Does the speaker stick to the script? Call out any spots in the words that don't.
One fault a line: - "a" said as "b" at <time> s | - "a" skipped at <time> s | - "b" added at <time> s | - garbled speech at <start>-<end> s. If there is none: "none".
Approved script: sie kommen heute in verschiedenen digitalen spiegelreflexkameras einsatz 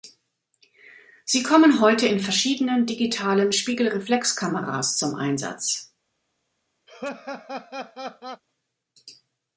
- "zum" added at 5.0 s